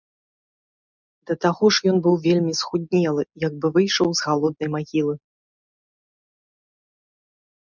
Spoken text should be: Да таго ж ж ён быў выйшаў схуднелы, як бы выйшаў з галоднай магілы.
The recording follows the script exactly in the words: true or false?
false